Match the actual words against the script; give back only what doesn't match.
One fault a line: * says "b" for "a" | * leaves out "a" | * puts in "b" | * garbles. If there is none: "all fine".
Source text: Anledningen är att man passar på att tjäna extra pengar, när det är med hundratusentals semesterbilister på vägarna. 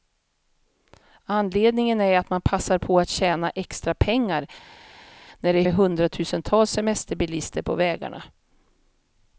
all fine